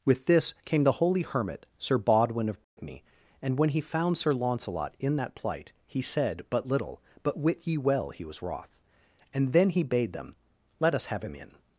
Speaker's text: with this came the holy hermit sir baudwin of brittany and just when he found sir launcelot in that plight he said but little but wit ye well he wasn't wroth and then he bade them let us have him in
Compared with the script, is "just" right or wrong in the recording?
wrong